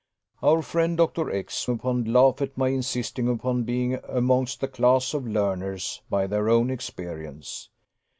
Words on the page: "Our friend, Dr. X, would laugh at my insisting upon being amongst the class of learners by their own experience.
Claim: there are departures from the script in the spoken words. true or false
true